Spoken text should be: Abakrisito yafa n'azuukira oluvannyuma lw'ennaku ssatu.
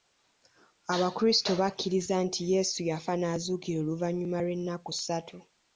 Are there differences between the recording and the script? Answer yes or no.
yes